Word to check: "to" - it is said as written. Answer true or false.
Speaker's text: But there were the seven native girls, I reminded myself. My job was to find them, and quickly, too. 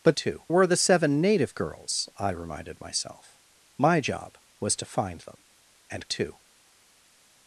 true